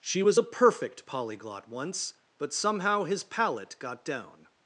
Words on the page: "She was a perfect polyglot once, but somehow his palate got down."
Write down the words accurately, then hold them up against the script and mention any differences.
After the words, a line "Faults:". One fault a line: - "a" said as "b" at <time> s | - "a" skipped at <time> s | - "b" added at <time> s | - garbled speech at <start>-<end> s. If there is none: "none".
"She was a perfect polyglot once, but somehow his palate got down."
Faults:
none